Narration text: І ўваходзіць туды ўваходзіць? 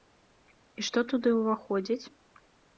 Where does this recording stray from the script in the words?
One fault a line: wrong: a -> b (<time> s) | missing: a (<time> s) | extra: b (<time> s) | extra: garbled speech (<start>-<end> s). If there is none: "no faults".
wrong: ўваходзіць -> што (0.9 s)